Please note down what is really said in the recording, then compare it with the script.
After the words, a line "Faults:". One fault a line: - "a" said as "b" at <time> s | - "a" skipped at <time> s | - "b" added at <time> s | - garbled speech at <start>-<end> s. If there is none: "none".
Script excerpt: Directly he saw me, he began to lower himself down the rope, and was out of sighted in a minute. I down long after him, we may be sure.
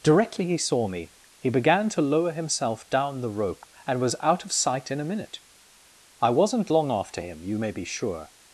Directly he saw me, he began to lower himself down the rope, and was out of sight in a minute. I wasn't long after him, you may be sure.
Faults:
- "sighted" said as "sight" at 4.5 s
- "down" said as "wasn't" at 6.3 s
- "we" said as "you" at 7.4 s